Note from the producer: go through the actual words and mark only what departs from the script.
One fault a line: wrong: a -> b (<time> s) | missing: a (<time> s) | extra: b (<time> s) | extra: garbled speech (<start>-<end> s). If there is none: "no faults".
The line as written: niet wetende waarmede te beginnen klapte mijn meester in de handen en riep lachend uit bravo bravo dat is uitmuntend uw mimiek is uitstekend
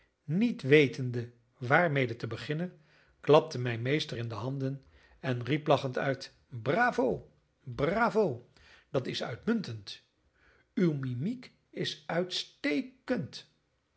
no faults